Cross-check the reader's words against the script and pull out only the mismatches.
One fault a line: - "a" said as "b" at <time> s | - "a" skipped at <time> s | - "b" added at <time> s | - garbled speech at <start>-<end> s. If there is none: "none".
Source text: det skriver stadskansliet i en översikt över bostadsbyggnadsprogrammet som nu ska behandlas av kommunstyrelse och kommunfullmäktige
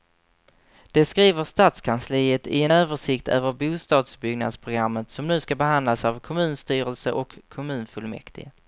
none